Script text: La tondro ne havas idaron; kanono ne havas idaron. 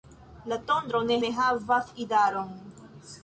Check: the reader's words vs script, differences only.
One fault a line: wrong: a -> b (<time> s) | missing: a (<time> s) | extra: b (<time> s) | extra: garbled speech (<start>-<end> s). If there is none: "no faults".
missing: havas idaron kanono (1.2 s)